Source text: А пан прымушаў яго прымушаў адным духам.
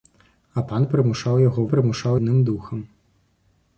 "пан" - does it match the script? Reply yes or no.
yes